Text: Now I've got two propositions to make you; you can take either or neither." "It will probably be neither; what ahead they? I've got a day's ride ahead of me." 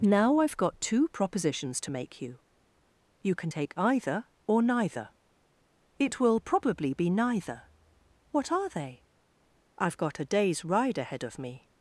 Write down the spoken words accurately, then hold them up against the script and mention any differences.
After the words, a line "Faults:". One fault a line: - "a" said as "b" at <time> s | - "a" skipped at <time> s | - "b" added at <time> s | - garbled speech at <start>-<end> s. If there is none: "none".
Now I've got two propositions to make you; you can take either or neither." "It will probably be neither; what are they? I've got a day's ride ahead of me."
Faults:
- "ahead" said as "are" at 8.5 s